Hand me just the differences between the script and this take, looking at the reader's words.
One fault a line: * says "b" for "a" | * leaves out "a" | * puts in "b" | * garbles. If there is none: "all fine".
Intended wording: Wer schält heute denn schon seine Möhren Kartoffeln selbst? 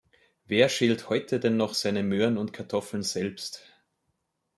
* says "noch" for "schon"
* puts in "und"